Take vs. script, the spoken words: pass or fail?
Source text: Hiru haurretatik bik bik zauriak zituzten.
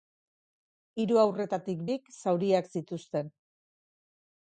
fail